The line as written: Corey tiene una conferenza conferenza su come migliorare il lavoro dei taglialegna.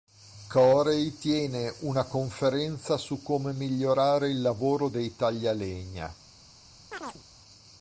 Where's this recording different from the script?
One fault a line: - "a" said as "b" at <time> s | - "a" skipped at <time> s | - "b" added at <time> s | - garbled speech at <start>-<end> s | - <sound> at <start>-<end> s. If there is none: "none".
- "conferenza" skipped at 3.0 s
- chirp at 6.9-7.2 s